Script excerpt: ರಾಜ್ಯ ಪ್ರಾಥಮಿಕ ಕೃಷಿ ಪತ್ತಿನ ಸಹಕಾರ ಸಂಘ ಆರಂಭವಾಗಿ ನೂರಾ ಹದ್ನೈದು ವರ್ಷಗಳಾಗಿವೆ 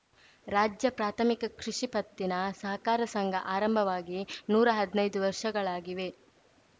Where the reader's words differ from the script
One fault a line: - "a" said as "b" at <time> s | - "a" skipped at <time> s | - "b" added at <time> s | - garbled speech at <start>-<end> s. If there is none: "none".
none